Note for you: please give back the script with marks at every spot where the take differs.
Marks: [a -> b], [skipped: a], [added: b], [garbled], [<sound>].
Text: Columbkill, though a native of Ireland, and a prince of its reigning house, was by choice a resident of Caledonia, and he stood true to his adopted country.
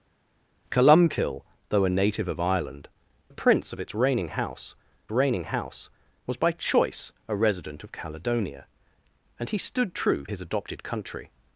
Columbkill, though a native of Ireland, [skipped: and] a prince of its reigning house, [added: reigning house] was by choice a resident of Caledonia, and he stood true [skipped: to] his adopted country.